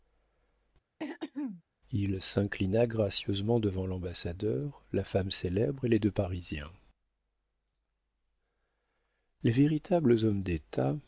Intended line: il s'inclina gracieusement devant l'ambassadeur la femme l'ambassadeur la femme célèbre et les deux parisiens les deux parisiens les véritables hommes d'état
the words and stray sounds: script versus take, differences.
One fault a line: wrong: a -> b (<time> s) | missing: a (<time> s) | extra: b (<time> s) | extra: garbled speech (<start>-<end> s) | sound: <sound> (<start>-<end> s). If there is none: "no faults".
sound: throat clearing (1.0-1.6 s)
missing: l'ambassadeur la femme (5.3 s)
missing: deux parisiens les (9.5 s)